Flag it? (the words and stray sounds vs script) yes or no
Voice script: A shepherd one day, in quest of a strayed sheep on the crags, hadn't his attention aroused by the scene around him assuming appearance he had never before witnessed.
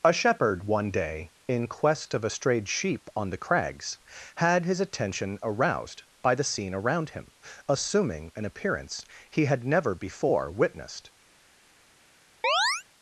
yes